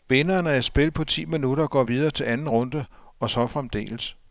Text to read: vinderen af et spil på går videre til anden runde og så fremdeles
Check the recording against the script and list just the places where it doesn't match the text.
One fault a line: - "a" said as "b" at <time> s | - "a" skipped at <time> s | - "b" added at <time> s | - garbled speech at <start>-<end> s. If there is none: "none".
- "ti minutter" added at 1.0 s